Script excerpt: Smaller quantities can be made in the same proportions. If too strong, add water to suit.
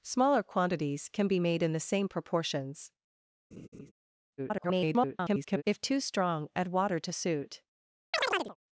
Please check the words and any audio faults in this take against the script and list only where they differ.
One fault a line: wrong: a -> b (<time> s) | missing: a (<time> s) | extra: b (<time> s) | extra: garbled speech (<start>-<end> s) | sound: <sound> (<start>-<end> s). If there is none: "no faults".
sound: laugh (3.5-3.9 s)
extra: garbled speech (4.4-5.6 s)
sound: chirp (8.1-8.6 s)